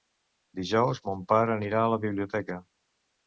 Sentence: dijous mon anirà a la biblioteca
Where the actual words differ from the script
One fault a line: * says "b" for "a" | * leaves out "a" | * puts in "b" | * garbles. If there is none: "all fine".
* puts in "pare"